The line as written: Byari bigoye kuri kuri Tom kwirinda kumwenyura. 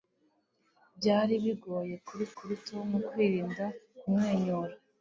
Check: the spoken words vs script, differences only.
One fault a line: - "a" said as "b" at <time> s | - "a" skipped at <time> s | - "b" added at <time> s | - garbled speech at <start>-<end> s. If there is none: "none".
none